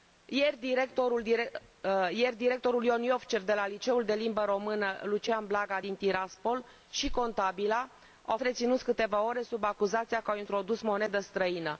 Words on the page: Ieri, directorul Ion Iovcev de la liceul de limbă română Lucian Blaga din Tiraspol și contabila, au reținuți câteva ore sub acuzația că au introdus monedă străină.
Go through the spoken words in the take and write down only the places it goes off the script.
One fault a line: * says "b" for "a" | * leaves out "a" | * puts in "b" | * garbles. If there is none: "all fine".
all fine